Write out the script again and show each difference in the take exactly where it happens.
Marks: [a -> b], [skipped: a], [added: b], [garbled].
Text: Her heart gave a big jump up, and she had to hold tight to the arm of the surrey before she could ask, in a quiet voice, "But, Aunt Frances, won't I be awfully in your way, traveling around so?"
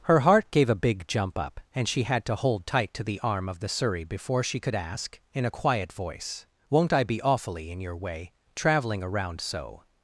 Her heart gave a big jump up, and she had to hold tight to the arm of the surrey before she could ask, in a quiet voice, [skipped: "But, Aunt Frances,] won't I be awfully in your way, traveling around so?"